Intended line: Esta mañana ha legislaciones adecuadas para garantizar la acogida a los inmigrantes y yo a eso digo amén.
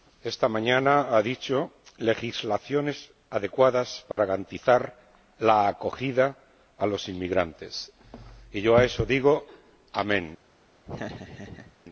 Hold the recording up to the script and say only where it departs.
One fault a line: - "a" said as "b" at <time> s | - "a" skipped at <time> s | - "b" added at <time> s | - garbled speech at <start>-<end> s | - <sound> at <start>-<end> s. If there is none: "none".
- "dicho" added at 1.2 s
- dropout at 4.1-4.2 s
- laugh at 10.8-11.8 s